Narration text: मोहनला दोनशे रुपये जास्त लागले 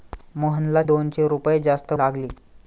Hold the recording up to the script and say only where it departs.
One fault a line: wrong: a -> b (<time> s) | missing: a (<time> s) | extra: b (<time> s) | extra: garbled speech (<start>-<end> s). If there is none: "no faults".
no faults